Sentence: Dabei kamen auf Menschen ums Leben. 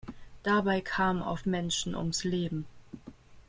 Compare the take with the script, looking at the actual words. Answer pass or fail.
pass